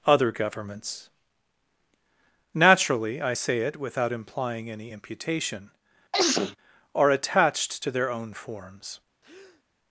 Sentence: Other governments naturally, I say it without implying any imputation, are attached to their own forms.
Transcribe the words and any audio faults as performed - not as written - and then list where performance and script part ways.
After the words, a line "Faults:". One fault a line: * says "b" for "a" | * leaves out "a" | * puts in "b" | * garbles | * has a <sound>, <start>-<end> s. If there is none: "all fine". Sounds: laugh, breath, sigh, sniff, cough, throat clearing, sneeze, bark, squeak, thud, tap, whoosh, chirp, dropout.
Other governments naturally, I say it without implying any imputation, are attached to their own forms.
Faults:
* has a sneeze, 6.1-6.6 s
* has a breath, 9.2-9.6 s